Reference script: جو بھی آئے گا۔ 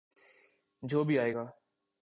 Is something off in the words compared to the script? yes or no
no